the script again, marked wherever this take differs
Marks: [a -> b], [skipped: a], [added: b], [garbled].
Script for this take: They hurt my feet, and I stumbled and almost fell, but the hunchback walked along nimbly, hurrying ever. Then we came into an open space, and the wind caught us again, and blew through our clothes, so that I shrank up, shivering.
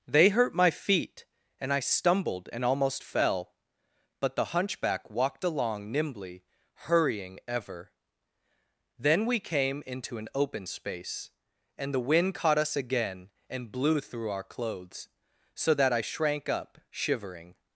They hurt my feet, and I stumbled and almost fell, but the hunchback walked along nimbly, hurrying ever. Then we came into an open space, and the wind caught us again, and blew through our clothes, so that I shrank up, shivering.